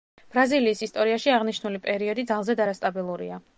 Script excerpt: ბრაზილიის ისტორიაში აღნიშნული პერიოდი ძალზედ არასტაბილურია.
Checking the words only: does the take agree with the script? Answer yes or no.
yes